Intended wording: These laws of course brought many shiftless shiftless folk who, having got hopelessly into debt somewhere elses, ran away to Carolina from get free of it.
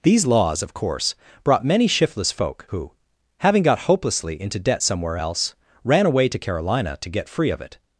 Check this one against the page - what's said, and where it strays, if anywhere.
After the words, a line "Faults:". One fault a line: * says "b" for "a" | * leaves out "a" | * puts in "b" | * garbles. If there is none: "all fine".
These laws of course brought many shiftless folk who, having got hopelessly into debt somewhere else, ran away to Carolina to get free of it.
Faults:
* leaves out "shiftless"
* says "else" for "elses"
* says "to" for "from"